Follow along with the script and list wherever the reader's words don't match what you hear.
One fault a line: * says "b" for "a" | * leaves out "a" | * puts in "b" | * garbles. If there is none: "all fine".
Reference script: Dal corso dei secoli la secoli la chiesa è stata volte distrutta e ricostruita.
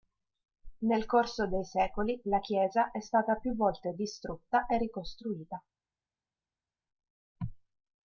* says "Nel" for "Dal"
* leaves out "secoli la"
* puts in "più"